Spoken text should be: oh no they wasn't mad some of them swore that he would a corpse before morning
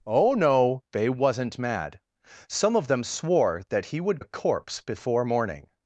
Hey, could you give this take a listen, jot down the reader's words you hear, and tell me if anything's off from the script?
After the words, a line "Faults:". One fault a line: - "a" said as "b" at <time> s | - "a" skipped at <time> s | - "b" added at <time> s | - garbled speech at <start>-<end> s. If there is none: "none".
oh no they wasn't mad some of them swore that he would a corpse before morning
Faults:
none